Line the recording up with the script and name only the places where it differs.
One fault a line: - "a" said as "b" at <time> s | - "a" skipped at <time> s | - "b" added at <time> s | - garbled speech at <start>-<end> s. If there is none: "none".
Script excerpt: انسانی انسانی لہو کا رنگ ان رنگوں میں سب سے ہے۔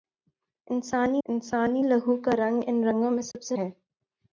none